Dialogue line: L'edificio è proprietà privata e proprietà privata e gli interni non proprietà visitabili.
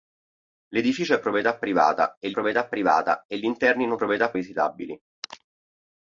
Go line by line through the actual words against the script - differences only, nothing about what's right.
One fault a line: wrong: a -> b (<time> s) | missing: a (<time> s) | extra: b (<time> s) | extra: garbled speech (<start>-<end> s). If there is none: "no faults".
no faults